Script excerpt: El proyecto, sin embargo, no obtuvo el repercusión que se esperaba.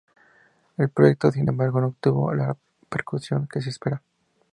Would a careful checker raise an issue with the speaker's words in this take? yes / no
yes